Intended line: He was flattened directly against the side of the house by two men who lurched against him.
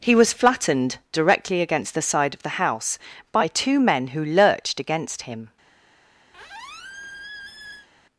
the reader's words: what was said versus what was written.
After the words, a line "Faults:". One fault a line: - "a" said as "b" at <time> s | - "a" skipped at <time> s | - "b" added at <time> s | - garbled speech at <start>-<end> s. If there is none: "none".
He was flattened directly against the side of the house by two men who lurched against him.
Faults:
none